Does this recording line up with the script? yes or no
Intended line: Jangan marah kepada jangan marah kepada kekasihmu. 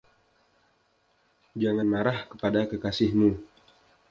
no